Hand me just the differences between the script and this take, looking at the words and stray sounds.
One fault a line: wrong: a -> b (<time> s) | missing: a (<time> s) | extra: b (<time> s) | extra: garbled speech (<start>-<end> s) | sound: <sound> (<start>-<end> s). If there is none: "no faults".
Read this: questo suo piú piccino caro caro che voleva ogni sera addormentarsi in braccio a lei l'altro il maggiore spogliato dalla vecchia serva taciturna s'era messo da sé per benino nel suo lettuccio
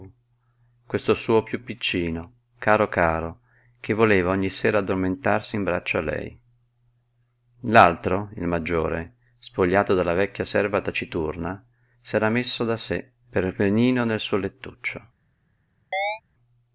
sound: chirp (15.9-16.2 s)